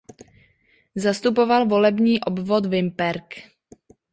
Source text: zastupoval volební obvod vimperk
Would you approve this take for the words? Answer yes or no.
yes